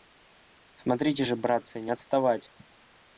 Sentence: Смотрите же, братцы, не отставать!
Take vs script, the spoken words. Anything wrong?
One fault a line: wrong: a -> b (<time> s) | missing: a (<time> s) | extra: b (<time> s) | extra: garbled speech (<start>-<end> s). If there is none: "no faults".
no faults